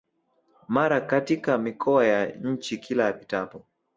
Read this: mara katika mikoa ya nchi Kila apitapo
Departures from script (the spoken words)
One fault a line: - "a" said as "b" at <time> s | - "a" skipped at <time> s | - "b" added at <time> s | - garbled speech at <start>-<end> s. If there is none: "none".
none